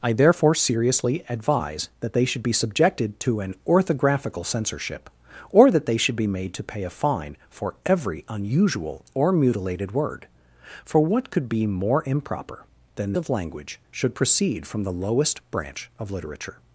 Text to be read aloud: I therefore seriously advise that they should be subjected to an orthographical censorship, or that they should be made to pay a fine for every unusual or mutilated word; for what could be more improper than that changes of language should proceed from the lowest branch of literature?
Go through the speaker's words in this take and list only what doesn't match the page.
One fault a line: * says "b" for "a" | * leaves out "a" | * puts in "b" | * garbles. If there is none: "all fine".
* leaves out "that changes"